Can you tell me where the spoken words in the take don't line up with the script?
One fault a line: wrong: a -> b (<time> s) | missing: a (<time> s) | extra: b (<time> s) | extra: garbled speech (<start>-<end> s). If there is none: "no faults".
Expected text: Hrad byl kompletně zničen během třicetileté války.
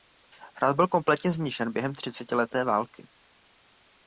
no faults